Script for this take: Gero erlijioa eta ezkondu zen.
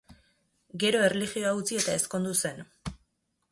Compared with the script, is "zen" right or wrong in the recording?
right